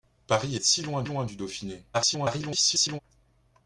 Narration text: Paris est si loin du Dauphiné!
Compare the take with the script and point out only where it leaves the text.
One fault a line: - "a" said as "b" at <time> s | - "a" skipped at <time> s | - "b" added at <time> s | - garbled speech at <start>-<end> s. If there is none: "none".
- "loin" added at 1.0 s
- garbled speech at 1.9-3.0 s